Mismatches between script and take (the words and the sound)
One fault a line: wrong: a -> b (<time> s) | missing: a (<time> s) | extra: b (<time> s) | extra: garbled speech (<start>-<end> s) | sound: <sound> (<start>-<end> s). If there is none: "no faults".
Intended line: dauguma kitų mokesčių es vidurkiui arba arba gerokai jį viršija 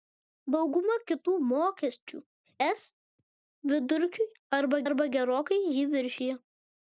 no faults